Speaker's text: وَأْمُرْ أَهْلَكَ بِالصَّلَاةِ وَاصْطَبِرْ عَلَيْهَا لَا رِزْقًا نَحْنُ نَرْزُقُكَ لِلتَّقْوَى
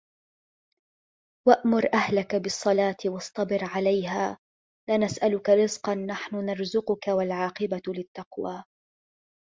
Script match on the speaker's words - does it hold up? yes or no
no